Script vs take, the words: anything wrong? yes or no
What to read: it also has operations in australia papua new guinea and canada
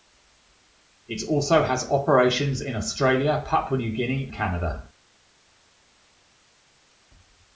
yes